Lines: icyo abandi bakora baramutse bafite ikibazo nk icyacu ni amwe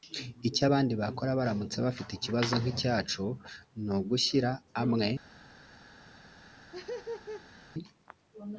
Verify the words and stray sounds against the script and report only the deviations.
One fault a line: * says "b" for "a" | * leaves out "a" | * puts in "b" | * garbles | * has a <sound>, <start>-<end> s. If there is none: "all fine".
* puts in "ugushyira"
* has a laugh, 6.4-7.7 s